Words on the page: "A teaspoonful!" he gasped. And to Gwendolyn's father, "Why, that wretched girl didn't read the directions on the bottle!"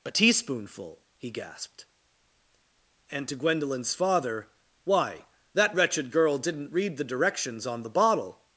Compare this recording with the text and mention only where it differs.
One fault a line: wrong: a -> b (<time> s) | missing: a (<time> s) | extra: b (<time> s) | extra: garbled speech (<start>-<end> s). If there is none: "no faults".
no faults